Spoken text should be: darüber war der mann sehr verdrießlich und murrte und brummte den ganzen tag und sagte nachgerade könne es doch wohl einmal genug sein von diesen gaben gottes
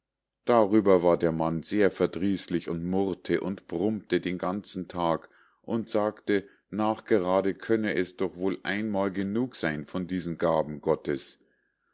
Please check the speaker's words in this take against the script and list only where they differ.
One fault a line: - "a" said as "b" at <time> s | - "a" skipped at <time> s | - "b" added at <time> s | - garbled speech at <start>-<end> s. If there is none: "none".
none